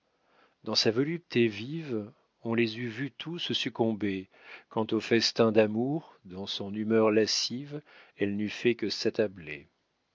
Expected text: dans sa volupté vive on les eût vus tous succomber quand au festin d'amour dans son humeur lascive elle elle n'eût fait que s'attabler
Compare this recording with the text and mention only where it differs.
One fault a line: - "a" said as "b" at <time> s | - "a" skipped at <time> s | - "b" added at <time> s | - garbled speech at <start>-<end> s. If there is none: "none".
- "elle" skipped at 8.3 s